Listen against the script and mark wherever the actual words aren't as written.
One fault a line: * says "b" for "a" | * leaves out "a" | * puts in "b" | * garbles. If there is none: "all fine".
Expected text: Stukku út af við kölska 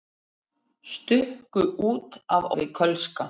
all fine